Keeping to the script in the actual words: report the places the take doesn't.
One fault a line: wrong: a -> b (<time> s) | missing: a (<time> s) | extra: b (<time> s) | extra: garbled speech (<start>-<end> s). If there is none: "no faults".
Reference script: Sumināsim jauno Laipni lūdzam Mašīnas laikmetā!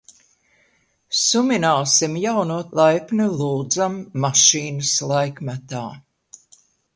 no faults